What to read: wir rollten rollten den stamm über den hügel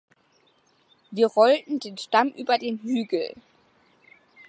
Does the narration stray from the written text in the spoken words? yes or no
yes